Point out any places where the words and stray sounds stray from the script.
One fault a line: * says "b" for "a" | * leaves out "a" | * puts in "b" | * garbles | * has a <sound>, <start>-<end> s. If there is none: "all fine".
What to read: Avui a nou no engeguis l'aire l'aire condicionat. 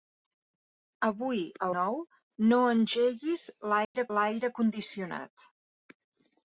* has a dropout, 3.8-3.9 s